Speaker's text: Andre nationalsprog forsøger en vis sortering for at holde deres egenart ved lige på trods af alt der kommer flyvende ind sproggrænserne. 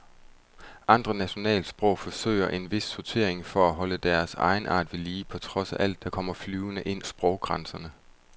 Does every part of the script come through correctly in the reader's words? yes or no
yes